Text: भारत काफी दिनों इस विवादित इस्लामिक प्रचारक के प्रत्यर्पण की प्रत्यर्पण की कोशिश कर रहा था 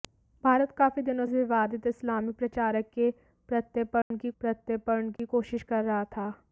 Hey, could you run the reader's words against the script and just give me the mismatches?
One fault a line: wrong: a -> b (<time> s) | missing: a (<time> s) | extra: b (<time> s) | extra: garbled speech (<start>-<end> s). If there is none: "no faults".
no faults